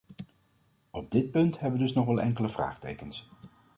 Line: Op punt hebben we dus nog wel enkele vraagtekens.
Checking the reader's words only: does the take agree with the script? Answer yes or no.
no